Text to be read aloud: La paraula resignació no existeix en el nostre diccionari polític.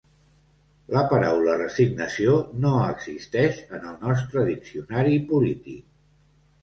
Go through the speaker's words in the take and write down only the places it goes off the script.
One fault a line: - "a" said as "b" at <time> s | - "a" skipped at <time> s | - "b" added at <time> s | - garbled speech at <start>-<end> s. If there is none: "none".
none